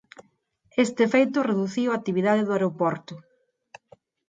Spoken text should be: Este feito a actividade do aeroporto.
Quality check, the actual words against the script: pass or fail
fail